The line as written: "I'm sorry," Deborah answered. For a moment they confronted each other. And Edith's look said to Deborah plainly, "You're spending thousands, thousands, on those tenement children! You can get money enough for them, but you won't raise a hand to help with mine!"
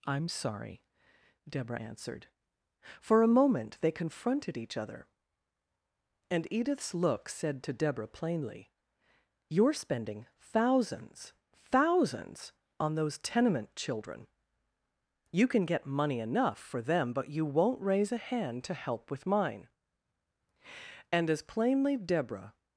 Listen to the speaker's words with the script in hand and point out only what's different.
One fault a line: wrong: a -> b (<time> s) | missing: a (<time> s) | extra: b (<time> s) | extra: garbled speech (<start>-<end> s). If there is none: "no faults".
extra: And as plainly Deborah (21.1 s)